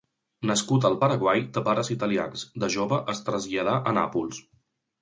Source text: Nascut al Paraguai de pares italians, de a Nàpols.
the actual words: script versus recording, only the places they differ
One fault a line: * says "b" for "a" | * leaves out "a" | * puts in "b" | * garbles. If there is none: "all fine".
* puts in "jove es traslladà"